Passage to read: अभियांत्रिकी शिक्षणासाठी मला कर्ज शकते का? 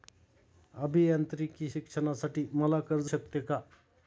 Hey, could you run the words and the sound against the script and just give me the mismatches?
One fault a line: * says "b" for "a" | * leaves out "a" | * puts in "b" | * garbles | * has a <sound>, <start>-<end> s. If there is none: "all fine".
all fine